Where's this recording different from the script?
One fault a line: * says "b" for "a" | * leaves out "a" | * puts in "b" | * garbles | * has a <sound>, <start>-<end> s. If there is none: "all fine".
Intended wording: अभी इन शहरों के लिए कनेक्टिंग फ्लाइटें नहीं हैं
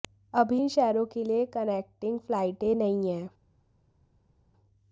all fine